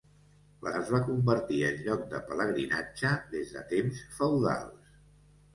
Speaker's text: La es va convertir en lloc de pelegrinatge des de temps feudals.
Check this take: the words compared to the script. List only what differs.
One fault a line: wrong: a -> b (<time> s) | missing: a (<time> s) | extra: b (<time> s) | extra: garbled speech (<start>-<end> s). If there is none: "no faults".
no faults